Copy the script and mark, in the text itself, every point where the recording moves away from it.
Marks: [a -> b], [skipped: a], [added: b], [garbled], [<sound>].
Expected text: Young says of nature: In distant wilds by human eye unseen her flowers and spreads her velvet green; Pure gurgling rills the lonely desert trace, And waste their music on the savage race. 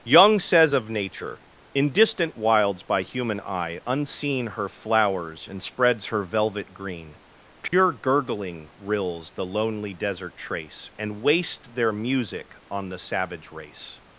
Young says of nature: In distant wilds by human eye unseen her flowers and spreads her velvet green; Pure [dropout] gurgling rills the lonely desert trace, And waste their music on the savage race.